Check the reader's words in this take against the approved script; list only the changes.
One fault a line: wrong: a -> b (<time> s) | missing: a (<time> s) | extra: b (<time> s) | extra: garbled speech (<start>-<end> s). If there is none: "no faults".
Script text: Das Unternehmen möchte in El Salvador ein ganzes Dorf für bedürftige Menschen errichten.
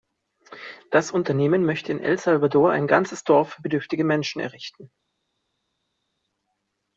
no faults